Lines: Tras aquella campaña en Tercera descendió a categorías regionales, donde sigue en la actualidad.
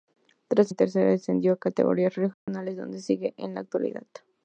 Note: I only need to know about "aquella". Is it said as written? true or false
false